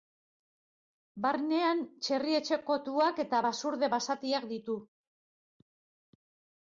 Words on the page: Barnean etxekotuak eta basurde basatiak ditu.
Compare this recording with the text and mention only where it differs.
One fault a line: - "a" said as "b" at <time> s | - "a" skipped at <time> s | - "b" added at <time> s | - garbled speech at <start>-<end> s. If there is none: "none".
- "txerri" added at 2.1 s